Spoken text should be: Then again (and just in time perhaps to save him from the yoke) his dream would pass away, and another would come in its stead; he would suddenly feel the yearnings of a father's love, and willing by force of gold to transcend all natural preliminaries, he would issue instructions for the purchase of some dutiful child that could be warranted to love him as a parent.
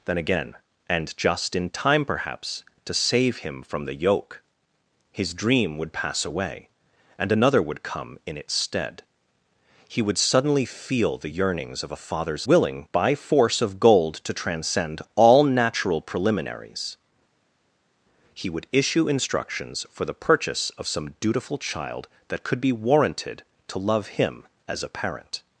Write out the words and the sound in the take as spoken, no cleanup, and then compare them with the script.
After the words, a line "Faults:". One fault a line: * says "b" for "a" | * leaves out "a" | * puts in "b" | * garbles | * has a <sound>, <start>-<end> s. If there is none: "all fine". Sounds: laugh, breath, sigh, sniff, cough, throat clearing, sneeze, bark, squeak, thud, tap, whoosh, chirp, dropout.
Then again (and just in time perhaps to save him from the yoke) his dream would pass away, and another would come in its stead; he would suddenly feel the yearnings of a father's willing by force of gold to transcend all natural preliminaries, he would issue instructions for the purchase of some dutiful child that could be warranted to love him as a parent.
Faults:
* leaves out "love and"